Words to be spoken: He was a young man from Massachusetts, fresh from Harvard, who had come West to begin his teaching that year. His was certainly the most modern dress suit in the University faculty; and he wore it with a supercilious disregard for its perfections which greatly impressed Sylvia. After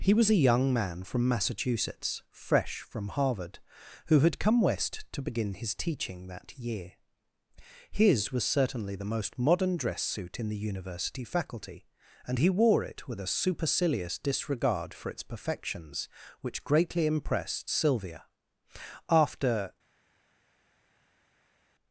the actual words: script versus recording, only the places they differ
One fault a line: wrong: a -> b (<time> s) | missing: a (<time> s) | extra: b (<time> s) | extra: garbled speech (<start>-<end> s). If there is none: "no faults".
no faults